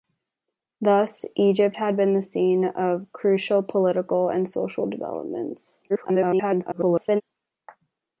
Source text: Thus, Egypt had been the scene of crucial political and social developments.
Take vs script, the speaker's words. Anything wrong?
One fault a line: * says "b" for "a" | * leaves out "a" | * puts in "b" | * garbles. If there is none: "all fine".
* garbles